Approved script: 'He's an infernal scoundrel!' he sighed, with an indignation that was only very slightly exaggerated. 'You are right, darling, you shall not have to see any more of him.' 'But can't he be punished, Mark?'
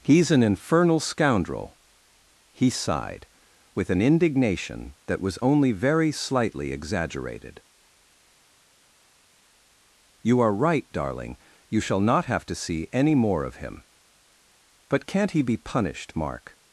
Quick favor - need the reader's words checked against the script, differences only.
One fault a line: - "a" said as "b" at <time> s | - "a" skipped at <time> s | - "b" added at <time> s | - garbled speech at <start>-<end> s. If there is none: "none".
none